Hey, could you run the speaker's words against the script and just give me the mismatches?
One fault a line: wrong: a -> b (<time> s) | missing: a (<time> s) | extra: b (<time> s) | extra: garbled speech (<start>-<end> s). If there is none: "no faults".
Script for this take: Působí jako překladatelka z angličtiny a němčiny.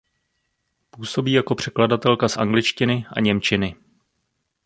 no faults